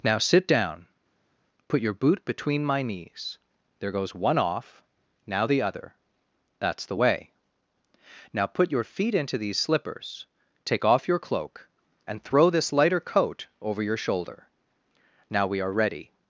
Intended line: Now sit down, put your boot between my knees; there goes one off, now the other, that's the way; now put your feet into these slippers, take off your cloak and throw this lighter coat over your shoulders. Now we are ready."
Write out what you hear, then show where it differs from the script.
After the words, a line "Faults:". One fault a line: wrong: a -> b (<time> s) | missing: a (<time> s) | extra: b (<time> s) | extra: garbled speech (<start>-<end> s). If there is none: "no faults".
Now sit down, put your boot between my knees; there goes one off, now the other, that's the way; now put your feet into these slippers, take off your cloak and throw this lighter coat over your shoulder. Now we are ready."
Faults:
wrong: shoulders -> shoulder (14.0 s)